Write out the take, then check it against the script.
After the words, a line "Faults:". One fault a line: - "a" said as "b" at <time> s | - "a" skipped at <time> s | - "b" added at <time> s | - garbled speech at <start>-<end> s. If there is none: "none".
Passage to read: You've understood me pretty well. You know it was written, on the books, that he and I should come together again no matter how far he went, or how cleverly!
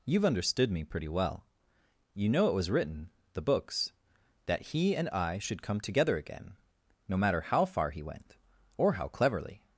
You've understood me pretty well. You know it was written, the books, that he and I should come together again no matter how far he went, or how cleverly!
Faults:
- "on" skipped at 3.1 s